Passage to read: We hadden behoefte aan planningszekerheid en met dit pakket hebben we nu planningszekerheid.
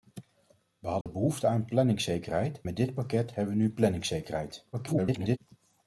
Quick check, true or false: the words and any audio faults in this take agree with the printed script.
false